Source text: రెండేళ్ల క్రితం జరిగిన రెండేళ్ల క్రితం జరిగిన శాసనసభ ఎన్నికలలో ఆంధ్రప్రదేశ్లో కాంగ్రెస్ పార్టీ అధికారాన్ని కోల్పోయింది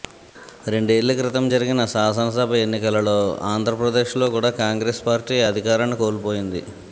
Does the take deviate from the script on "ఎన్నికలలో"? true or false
false